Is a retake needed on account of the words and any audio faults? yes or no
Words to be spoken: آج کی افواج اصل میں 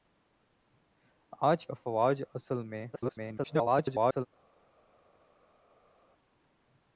yes